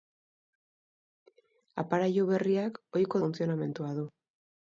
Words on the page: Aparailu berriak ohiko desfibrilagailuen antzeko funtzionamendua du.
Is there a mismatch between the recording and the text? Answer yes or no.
yes